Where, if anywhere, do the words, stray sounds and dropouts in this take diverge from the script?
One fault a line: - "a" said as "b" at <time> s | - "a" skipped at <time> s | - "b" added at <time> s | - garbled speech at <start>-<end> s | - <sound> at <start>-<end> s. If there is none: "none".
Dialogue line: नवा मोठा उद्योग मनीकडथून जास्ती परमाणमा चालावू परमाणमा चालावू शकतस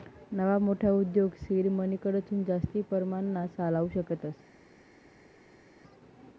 - "सीड" added at 1.4 s
- "परमाणमा चालावू" skipped at 3.9 s